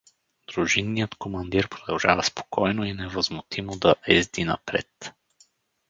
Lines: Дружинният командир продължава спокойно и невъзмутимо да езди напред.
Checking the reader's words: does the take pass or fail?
pass